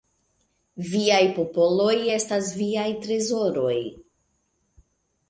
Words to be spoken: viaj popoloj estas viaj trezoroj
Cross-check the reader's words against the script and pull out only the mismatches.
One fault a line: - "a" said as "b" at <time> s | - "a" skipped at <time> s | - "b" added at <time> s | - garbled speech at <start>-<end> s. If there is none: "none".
none